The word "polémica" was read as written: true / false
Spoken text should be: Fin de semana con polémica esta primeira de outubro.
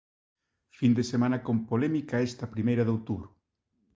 true